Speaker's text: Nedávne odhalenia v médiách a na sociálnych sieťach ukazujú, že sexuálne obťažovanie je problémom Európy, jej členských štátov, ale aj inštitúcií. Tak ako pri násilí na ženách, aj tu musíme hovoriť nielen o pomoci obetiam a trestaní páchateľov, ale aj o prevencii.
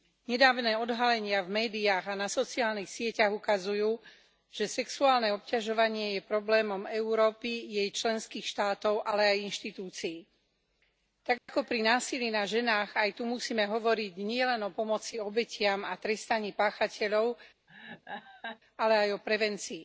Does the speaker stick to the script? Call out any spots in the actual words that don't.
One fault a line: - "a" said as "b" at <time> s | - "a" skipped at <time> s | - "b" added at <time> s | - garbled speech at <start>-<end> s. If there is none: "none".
none